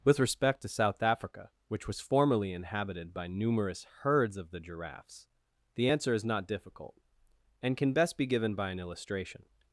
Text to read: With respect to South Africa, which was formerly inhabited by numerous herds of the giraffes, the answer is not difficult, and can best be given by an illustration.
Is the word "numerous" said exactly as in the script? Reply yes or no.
yes